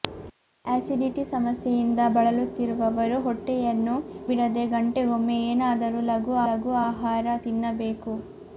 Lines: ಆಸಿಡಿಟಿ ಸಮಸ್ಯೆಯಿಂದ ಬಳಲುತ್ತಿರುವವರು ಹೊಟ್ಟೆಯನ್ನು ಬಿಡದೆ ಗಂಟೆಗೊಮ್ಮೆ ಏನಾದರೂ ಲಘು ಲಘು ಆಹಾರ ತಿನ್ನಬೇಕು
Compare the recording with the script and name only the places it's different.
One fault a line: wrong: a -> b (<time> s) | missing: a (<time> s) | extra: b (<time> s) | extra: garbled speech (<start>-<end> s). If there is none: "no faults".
no faults